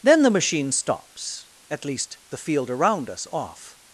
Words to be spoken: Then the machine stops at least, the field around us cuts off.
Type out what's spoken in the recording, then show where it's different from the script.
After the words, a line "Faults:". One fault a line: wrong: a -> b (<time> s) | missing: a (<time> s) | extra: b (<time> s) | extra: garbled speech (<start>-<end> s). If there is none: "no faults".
Then the machine stops at least, the field around us off.
Faults:
missing: cuts (3.3 s)